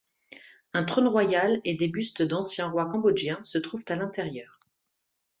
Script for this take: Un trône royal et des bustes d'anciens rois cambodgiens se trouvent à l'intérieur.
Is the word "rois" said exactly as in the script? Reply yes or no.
yes